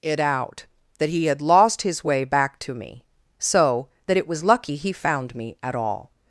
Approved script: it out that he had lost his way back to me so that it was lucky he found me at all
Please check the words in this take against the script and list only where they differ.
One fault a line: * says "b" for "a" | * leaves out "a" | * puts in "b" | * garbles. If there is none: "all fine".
all fine